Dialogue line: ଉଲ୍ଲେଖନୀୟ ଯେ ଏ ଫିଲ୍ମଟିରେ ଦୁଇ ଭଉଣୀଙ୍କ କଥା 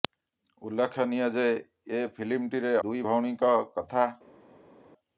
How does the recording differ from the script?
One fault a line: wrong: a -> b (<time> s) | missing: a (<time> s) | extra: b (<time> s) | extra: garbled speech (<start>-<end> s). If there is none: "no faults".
no faults